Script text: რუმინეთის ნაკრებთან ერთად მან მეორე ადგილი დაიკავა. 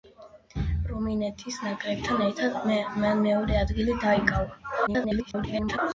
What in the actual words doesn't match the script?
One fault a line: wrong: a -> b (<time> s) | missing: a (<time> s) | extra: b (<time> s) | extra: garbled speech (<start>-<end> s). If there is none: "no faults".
extra: garbled speech (4.9-5.8 s)